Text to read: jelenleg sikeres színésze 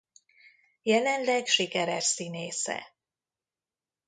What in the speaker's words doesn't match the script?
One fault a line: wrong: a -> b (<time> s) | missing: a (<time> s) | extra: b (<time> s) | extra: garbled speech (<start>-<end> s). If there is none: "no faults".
no faults